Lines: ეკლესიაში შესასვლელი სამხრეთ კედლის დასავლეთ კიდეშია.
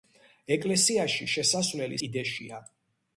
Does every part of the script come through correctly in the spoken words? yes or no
no